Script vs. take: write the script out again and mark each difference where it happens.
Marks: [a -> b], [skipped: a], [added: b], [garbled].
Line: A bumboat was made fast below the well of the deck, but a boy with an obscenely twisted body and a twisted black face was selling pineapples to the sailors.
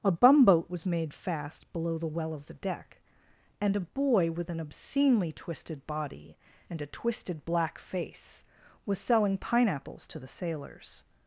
A bumboat was made fast below the well of the deck, [but -> and] a boy with an obscenely twisted body and a twisted black face was selling pineapples to the sailors.